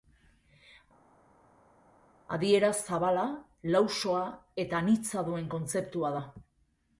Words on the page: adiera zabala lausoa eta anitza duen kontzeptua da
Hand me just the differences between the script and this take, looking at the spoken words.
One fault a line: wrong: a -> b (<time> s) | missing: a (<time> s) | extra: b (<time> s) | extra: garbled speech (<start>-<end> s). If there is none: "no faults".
no faults